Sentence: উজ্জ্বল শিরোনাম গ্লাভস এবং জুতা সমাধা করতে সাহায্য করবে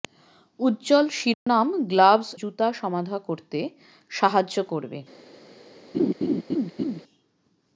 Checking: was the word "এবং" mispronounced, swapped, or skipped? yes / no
yes